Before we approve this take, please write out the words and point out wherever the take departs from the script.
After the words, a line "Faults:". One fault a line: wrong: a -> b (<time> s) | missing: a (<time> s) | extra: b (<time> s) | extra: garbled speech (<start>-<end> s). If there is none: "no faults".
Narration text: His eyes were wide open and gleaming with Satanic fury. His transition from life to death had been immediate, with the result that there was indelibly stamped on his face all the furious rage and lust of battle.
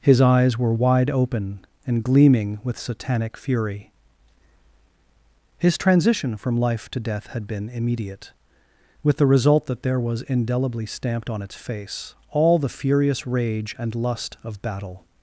His eyes were wide open and gleaming with Satanic fury. His transition from life to death had been immediate, with the result that there was indelibly stamped on its face all the furious rage and lust of battle.
Faults:
wrong: his -> its (11.4 s)